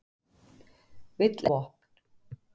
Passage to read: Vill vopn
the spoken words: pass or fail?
pass